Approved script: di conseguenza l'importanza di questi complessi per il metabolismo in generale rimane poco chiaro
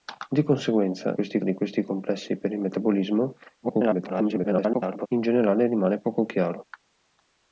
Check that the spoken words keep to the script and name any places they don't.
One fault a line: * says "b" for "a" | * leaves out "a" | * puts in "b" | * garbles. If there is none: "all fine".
* says "questi" for "l'importanza"
* garbles